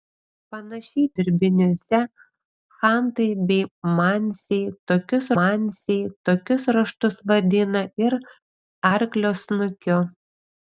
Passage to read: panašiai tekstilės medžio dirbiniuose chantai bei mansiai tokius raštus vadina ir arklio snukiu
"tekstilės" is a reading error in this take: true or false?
true